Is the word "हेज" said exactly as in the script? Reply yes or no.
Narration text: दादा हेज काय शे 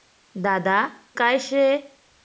no